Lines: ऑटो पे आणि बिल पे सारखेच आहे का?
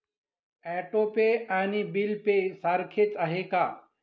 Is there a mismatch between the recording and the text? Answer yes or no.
no